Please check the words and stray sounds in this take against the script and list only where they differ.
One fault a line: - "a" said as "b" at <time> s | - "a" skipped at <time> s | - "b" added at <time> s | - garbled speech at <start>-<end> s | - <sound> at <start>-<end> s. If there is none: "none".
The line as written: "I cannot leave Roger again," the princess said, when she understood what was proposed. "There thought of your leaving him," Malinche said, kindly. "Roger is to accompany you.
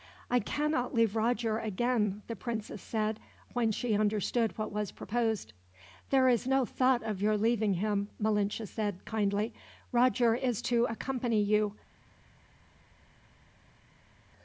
- "is no" added at 6.3 s